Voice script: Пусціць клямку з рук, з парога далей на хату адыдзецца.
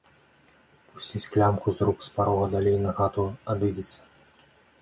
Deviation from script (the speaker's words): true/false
false